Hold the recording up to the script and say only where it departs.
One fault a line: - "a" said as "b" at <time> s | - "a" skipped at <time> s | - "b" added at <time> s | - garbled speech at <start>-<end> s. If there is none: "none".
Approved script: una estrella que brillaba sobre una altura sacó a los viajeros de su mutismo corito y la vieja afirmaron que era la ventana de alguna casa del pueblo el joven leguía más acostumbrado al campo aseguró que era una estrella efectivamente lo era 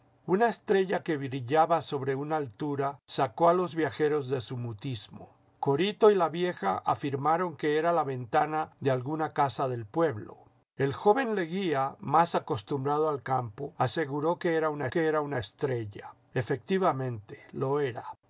- "que era una" added at 14.9 s